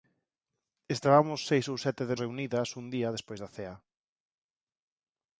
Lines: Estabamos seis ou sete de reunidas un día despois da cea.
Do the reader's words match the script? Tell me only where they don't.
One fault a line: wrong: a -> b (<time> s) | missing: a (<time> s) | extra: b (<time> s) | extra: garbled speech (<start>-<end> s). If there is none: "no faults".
no faults